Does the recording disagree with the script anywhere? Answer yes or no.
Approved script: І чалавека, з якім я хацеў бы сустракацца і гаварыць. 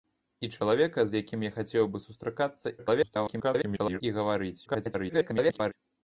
yes